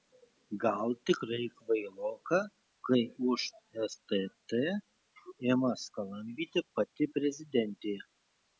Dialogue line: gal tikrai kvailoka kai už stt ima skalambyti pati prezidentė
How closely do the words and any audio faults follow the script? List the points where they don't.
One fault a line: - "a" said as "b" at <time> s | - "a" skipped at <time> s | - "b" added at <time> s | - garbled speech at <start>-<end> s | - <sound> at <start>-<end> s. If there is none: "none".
none